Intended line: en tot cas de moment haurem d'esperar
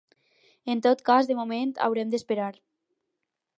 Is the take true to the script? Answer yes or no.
yes